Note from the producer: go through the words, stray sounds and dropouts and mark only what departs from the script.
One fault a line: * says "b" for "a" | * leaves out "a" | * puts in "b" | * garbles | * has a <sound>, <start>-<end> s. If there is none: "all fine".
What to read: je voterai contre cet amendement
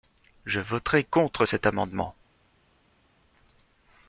all fine